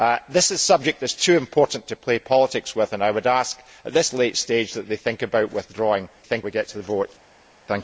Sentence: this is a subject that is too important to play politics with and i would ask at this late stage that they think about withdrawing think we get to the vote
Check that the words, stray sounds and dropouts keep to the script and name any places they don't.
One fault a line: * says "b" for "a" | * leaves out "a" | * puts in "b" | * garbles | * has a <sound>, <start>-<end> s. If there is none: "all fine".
all fine